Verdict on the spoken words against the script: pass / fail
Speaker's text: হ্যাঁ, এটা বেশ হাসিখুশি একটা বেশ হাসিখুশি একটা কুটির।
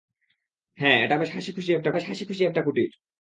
pass